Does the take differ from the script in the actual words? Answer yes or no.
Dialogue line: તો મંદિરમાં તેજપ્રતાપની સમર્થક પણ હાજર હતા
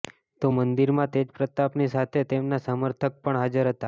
yes